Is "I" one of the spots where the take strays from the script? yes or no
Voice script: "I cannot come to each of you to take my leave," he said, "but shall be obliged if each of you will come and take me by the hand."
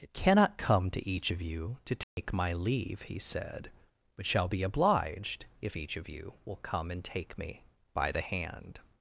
yes